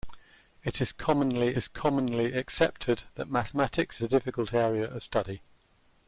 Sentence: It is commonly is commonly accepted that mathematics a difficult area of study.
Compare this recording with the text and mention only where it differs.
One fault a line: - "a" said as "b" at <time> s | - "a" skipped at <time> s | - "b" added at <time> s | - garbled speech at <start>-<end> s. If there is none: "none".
none